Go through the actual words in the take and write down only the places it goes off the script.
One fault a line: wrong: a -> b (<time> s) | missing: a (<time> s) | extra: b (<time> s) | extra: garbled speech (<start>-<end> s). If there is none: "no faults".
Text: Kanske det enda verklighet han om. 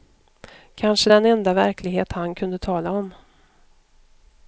wrong: det -> den (1.1 s)
extra: kunde tala (2.3 s)